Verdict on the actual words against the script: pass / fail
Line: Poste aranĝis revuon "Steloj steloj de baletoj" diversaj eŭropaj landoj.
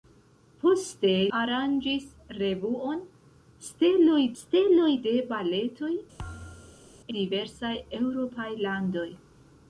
pass